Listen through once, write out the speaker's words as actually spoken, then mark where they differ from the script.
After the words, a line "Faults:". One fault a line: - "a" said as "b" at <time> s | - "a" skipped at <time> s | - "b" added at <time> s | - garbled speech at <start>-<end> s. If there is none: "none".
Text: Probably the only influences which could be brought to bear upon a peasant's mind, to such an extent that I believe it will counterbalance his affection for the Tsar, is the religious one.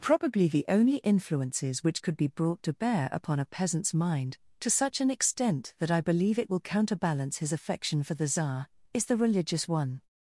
Probably the only influences which could be brought to bear upon a peasant's mind, to such an extent that I believe it will counterbalance his affection for the Tsar, is the religious one.
Faults:
none